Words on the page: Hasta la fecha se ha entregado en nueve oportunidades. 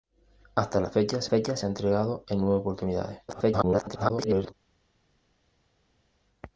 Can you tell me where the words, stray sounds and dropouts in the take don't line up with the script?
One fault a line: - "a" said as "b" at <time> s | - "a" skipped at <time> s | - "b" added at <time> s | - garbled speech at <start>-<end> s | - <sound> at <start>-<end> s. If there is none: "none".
- "fecha se" added at 1.3 s
- garbled speech at 3.3-4.5 s